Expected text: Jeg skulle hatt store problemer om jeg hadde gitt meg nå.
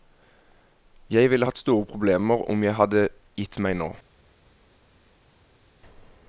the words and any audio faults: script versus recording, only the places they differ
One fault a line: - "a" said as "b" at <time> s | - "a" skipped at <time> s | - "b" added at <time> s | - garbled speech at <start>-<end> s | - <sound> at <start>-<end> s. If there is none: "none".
- "skulle" said as "ville" at 1.3 s